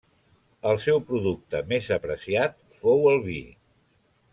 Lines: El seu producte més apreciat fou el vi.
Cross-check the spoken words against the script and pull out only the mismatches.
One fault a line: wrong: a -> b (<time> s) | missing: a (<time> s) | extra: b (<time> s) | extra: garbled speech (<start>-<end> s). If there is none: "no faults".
no faults